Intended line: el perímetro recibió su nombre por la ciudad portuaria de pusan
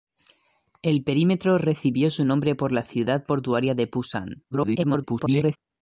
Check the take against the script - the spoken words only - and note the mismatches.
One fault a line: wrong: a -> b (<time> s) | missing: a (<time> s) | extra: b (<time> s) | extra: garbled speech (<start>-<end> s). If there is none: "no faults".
extra: garbled speech (4.5-5.6 s)